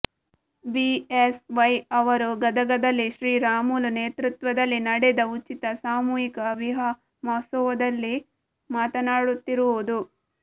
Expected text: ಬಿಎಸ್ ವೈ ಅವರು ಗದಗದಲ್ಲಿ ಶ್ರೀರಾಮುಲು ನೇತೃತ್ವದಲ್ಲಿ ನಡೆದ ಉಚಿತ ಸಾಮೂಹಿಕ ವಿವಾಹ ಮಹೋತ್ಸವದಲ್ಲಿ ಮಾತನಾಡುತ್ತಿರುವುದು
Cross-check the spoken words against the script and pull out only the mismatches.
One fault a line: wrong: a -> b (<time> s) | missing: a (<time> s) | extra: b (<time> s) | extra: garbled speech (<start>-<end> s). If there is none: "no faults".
no faults